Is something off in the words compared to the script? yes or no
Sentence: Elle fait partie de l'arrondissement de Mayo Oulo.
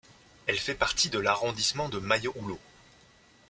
no